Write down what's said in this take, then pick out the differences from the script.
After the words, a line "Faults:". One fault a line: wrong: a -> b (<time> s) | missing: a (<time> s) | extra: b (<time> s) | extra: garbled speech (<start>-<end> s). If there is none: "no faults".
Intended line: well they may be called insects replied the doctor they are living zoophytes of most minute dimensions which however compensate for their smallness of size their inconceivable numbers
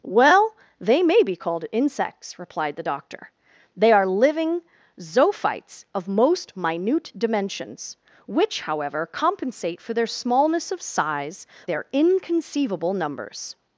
well they may be called insects replied the doctor they are living zoophytes of most minute dimensions which however compensate for their smallness of size their inconceivable numbers
Faults:
no faults